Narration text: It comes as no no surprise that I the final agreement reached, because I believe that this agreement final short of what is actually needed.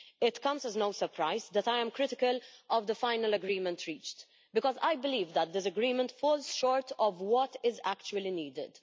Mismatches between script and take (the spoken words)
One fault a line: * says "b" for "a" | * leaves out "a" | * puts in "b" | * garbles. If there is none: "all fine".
* leaves out "no"
* puts in "am critical of"
* says "falls" for "final"